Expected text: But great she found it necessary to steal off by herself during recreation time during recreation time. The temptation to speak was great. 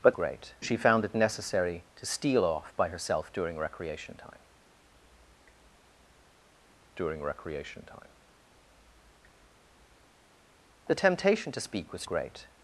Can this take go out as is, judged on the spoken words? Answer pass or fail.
pass